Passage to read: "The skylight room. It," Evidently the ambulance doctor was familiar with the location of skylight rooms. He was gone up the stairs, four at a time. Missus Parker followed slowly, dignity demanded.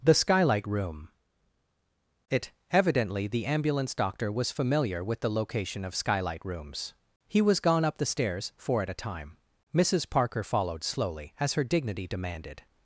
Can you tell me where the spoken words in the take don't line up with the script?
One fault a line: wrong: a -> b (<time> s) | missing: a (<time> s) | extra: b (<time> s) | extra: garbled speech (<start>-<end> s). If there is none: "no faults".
extra: as her (11.4 s)